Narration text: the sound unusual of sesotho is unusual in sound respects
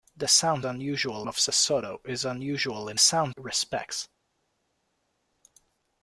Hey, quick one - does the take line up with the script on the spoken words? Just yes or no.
yes